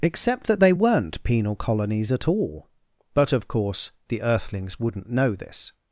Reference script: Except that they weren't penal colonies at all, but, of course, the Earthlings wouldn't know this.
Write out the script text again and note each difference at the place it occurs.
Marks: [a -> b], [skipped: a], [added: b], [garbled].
Except that they weren't penal colonies at all, but, of course, the Earthlings wouldn't know this.